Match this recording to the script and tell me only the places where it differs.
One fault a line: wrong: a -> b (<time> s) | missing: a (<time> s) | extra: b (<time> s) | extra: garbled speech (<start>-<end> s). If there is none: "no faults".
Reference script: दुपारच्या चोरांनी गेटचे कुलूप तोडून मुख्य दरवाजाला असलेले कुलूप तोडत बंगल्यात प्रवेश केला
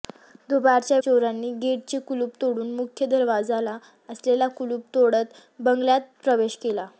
no faults